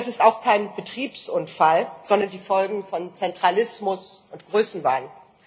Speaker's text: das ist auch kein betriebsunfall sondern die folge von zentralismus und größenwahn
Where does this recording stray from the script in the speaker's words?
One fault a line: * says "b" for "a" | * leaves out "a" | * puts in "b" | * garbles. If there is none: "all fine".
all fine